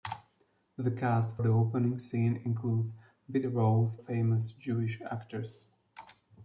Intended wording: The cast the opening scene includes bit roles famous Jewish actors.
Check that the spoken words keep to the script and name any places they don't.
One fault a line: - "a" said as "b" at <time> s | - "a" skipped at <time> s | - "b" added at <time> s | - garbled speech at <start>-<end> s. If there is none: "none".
none